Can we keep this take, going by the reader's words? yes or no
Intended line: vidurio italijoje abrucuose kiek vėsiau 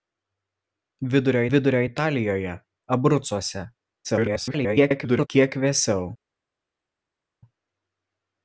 no